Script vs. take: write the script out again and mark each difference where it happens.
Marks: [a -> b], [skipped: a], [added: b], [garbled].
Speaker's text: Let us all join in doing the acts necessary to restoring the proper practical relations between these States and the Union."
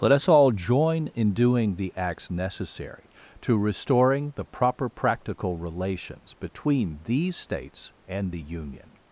Let us all join in doing the acts necessary to restoring the proper practical relations between these States and the Union."